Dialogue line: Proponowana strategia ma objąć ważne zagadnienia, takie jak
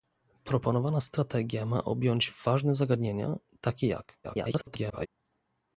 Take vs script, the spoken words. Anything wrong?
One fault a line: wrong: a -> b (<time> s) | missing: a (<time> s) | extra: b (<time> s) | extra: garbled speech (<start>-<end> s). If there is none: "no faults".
extra: garbled speech (4.2-5.1 s)